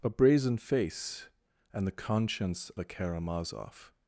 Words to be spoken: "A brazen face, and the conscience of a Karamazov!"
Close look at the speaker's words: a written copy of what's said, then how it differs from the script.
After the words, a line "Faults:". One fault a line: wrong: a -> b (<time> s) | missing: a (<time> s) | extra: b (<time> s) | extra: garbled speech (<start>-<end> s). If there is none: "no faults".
"A brazen face, and the conscience a Karamazov!"
Faults:
missing: of (2.7 s)